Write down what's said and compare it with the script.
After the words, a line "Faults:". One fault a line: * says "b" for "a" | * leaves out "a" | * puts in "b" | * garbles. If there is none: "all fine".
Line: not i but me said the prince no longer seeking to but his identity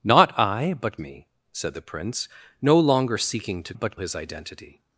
not i but me said the prince no longer seeking to but his identity
Faults:
all fine